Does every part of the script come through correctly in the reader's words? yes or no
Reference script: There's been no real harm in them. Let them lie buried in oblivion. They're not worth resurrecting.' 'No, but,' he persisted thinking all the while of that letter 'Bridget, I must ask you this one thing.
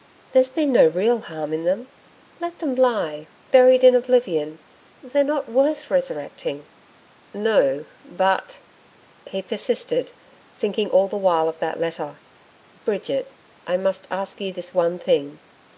yes